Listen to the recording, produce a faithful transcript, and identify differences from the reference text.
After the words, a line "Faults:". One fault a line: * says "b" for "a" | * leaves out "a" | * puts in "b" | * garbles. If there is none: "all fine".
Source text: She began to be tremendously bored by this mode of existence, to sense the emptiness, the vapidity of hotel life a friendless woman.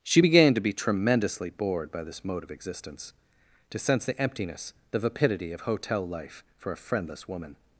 She began to be tremendously bored by this mode of existence, to sense the emptiness, the vapidity of hotel life for a friendless woman.
Faults:
* puts in "for"